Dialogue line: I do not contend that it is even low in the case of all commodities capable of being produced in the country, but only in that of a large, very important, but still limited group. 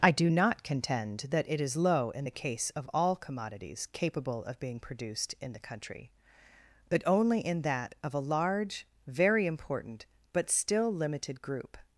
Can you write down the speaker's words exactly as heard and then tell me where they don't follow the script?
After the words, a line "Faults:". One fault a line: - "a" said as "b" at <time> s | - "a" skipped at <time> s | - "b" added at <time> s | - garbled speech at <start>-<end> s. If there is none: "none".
I do not contend that it is low in the case of all commodities capable of being produced in the country, but only in that of a large, very important, but still limited group.
Faults:
- "even" skipped at 1.8 s